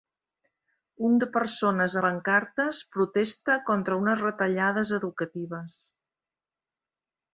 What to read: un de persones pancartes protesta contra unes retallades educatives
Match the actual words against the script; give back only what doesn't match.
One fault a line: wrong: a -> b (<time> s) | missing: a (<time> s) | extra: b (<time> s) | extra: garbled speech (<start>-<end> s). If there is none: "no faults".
no faults